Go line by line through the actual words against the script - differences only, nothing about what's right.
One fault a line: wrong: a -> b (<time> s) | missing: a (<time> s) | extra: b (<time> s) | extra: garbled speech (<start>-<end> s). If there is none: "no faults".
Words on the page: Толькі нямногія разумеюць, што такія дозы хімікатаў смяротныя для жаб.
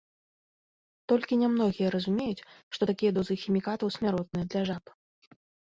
no faults